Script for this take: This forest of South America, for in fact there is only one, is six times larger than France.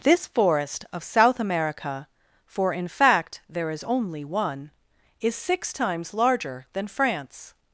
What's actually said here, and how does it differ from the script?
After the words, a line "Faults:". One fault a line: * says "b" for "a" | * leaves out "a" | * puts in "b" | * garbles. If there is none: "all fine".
This forest of South America, for in fact there is only one, is six times larger than France.
Faults:
all fine